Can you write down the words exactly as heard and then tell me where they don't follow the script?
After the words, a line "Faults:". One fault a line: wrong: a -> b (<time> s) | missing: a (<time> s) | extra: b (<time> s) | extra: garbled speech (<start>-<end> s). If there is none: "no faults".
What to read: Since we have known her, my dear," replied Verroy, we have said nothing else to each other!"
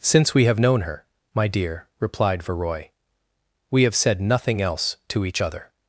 Since we have known her, my dear," replied Verroy, we have said nothing else to each other!"
Faults:
no faults